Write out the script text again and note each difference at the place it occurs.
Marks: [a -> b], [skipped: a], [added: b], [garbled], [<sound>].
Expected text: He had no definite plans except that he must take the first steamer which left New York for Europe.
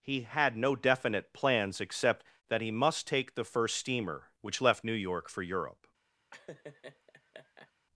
He had no definite plans except that he must take the first steamer which left New York for Europe. [laugh]